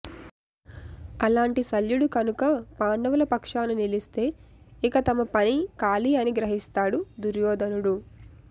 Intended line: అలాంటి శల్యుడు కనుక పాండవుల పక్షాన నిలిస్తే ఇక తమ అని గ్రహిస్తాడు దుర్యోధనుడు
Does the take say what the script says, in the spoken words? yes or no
no